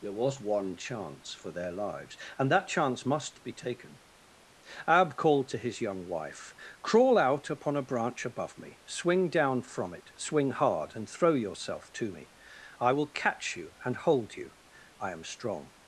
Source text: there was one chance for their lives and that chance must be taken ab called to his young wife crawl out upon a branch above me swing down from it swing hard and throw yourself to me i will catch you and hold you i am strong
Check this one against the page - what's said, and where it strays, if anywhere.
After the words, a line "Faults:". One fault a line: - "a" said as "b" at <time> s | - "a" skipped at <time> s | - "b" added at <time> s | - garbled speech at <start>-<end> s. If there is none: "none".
there was one chance for their lives and that chance must be taken ab called to his young wife crawl out upon a branch above me swing down from it swing hard and throw yourself to me i will catch you and hold you i am strong
Faults:
none